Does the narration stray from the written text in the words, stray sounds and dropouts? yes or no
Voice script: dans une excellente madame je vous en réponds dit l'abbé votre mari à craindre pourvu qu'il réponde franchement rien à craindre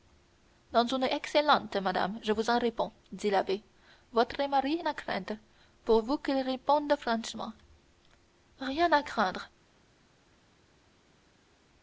no